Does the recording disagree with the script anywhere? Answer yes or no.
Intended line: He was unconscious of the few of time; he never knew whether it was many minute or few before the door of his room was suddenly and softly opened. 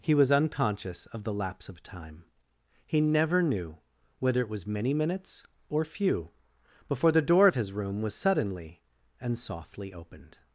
yes